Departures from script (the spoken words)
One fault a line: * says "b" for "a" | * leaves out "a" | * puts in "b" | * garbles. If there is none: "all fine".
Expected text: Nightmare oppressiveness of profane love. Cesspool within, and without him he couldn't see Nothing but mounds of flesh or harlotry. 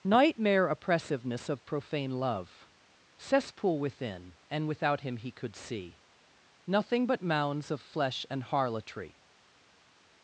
* says "could" for "couldn't"
* says "and" for "or"